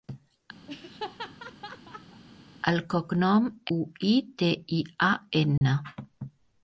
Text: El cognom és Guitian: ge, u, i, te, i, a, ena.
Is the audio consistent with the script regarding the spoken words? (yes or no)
no